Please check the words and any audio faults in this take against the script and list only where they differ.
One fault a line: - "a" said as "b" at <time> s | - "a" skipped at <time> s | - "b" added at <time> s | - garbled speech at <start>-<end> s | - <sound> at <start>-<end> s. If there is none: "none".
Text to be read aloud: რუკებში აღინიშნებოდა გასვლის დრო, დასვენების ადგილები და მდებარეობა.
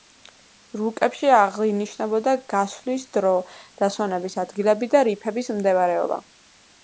- "რიფების" added at 5.1 s